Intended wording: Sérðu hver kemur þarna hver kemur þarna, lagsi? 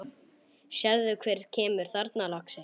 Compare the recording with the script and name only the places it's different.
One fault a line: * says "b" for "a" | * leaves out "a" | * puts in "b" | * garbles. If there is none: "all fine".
* leaves out "hver kemur þarna"